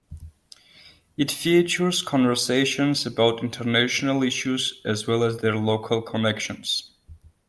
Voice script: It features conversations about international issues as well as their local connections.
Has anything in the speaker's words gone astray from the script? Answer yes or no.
no